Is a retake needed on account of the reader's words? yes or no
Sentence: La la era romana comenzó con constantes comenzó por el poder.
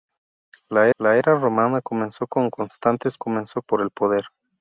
no